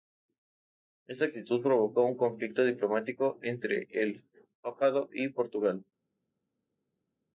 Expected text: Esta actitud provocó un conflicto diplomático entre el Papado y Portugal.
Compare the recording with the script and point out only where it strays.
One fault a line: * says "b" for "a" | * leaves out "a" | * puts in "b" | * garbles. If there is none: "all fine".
all fine